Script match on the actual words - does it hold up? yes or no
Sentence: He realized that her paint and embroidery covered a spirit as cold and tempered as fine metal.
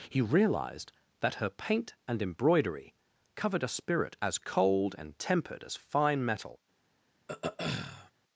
yes